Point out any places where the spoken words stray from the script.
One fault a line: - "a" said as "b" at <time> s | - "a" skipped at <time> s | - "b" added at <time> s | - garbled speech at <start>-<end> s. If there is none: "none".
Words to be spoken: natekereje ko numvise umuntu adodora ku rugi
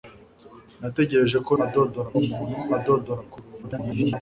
- "numvise" said as "adodora" at 1.6 s
- garbled speech at 3.6-4.2 s